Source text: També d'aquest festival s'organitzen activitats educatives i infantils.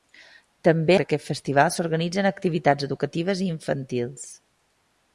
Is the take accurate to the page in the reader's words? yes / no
yes